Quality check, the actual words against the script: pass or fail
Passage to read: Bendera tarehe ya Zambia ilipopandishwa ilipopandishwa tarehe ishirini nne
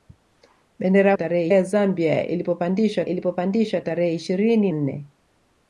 pass